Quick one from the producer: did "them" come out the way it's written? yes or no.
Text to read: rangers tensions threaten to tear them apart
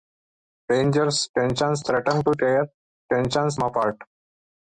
no